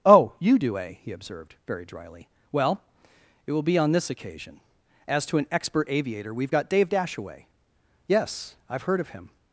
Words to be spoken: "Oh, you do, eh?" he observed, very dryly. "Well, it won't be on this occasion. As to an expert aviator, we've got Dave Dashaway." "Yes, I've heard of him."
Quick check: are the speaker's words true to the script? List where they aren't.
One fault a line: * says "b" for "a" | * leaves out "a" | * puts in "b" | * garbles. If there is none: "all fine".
* says "will" for "won't"